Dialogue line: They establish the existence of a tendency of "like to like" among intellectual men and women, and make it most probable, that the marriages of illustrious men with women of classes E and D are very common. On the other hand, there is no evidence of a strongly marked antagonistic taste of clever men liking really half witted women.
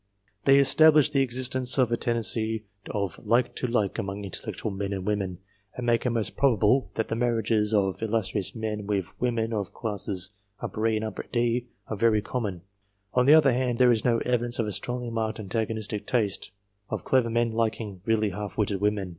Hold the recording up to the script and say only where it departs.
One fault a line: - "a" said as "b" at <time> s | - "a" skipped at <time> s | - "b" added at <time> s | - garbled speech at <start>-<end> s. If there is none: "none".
none